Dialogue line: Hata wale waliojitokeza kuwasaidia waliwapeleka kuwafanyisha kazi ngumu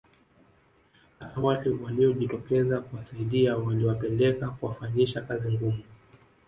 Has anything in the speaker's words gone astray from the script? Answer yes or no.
no